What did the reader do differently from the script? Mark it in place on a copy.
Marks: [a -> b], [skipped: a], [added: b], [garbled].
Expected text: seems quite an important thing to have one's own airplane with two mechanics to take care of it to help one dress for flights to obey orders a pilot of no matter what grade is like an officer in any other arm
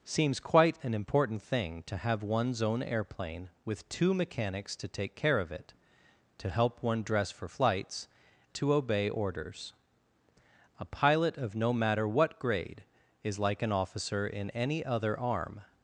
seems quite an important thing to have one's own airplane with two mechanics to take care of it to help one dress for flights to obey orders a pilot of no matter what grade is like an officer in any other arm